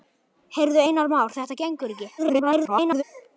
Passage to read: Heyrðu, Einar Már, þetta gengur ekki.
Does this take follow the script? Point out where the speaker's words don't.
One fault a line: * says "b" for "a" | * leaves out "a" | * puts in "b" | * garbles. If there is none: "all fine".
* garbles